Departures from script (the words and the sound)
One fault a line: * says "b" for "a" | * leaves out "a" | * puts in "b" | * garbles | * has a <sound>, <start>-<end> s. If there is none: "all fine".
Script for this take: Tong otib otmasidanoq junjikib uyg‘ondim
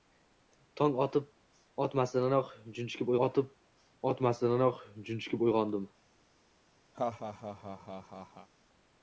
* puts in "otib otmasidanoq junjikib"
* has a laugh, 6.9-8.5 s